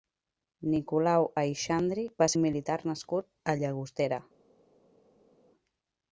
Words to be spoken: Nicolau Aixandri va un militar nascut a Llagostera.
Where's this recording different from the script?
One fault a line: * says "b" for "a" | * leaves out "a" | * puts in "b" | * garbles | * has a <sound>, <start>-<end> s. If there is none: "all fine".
all fine